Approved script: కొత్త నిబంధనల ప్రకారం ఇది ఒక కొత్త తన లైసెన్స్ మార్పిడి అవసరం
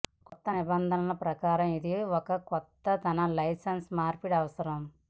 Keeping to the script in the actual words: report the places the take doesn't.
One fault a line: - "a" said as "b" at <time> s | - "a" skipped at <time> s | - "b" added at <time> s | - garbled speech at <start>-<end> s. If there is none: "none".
none